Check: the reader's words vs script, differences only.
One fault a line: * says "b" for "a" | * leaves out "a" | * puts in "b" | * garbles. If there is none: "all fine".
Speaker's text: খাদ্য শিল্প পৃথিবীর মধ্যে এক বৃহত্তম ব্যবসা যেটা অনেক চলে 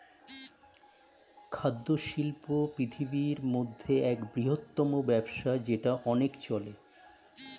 all fine